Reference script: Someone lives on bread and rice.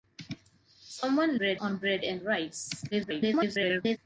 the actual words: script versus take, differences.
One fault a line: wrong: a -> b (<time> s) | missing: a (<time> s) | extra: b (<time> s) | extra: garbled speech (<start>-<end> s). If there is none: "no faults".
wrong: lives -> bread (1.3 s)
extra: garbled speech (2.9-4.0 s)